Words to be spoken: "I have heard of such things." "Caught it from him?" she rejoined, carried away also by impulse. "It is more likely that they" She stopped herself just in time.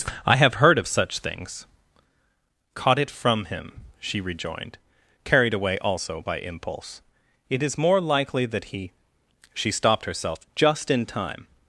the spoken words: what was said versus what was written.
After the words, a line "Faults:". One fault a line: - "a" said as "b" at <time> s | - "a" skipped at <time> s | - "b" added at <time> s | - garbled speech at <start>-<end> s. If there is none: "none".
"I have heard of such things." "Caught it from him?" she rejoined, carried away also by impulse. "It is more likely that he" She stopped herself just in time.
Faults:
- "they" said as "he" at 8.6 s